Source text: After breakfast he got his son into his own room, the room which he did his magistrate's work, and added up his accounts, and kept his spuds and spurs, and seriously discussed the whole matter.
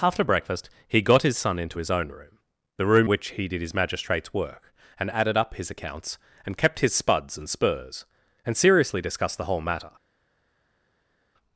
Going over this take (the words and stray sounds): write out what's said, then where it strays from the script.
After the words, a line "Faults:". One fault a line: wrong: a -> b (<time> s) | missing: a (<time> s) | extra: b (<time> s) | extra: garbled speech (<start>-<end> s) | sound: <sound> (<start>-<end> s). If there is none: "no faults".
After breakfast he got his son into his own room, the room which he did his magistrate's work, and added up his accounts, and kept his spuds and spurs, and seriously discussed the whole matter.
Faults:
no faults